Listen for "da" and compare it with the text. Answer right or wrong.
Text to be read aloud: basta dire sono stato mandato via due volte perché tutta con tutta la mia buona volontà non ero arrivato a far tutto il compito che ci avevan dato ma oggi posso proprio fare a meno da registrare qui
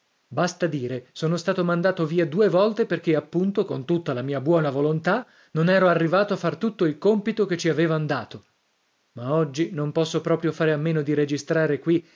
wrong